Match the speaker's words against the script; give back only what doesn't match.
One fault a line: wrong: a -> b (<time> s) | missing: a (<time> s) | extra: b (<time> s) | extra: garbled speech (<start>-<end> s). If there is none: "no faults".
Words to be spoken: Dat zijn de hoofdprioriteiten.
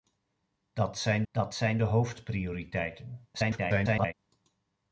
extra: dat zijn (1.3 s)
extra: garbled speech (3.3-4.1 s)